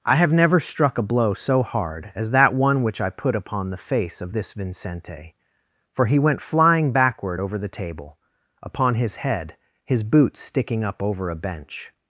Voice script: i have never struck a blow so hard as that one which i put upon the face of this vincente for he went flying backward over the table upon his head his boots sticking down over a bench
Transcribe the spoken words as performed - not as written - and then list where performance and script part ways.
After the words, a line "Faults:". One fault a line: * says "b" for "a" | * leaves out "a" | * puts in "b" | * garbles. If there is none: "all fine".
i have never struck a blow so hard as that one which i put upon the face of this vincente for he went flying backward over the table upon his head his boots sticking up over a bench
Faults:
* says "up" for "down"